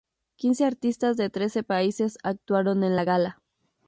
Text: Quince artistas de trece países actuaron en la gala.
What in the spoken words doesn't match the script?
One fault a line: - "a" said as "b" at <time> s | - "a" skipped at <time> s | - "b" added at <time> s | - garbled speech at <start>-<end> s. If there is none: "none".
none